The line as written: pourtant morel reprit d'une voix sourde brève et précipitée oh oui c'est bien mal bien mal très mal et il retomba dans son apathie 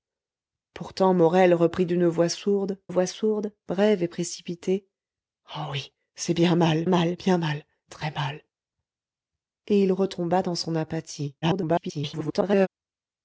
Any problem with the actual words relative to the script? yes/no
yes